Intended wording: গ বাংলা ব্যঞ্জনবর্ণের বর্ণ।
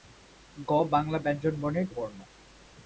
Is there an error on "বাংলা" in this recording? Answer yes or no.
no